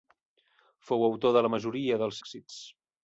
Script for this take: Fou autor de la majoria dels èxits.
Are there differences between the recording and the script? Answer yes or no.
no